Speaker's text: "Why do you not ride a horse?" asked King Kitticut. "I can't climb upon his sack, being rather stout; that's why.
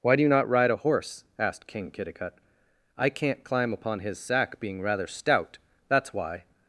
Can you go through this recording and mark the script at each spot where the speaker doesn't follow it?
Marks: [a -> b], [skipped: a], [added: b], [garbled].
"Why do you not ride a horse?" asked King Kitticut. "I can't climb upon his sack, being rather stout; that's why.